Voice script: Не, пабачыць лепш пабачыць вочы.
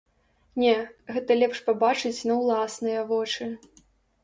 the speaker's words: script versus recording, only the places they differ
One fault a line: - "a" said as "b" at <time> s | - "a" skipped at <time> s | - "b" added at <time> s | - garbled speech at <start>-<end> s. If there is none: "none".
- "пабачыць" said as "гэта" at 1.2 s
- "на ўласныя" added at 2.3 s